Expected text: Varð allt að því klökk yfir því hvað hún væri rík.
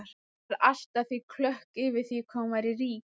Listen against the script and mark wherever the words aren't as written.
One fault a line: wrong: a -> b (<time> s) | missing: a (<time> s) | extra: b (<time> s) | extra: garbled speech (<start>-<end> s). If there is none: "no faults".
no faults